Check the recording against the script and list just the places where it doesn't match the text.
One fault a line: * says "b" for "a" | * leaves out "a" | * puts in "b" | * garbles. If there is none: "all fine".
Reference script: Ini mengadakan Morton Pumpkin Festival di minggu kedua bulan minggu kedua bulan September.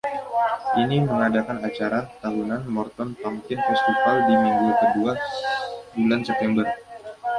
* puts in "acara tahunan"
* leaves out "minggu kedua bulan"